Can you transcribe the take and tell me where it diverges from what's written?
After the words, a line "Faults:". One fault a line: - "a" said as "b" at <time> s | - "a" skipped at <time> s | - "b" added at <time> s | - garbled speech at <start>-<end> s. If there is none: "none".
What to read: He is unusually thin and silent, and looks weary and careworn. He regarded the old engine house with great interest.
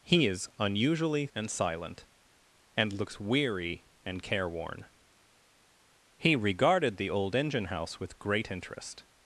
He is unusually and silent, and looks weary and careworn. He regarded the old engine house with great interest.
Faults:
- "thin" skipped at 1.3 s